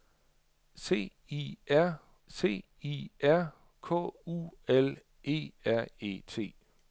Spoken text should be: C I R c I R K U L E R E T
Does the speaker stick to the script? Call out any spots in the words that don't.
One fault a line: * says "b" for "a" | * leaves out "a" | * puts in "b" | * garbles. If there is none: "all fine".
all fine